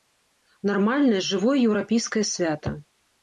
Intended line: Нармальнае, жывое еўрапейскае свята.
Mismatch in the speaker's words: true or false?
false